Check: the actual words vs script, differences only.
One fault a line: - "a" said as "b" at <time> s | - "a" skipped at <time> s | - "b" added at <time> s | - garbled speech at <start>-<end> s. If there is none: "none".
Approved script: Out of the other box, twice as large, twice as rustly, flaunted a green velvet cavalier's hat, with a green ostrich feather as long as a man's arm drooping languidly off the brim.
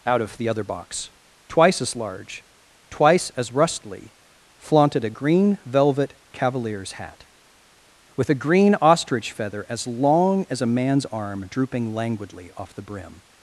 none